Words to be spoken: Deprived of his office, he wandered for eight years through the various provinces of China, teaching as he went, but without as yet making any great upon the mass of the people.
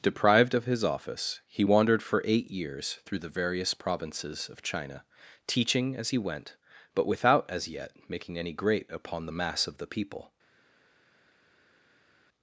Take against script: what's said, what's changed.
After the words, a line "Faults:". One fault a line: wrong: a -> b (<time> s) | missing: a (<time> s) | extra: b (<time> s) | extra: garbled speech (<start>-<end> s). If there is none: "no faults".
Deprived of his office, he wandered for eight years through the various provinces of China, teaching as he went, but without as yet making any great upon the mass of the people.
Faults:
no faults